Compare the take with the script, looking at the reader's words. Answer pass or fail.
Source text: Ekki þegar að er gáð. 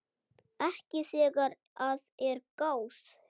pass